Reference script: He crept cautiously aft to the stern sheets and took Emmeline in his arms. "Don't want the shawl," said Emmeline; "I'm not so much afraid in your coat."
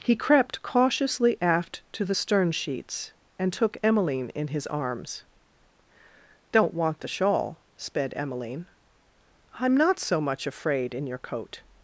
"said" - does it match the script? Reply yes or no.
no